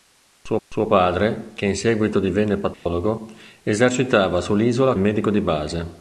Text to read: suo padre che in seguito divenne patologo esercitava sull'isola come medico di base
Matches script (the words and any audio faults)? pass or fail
fail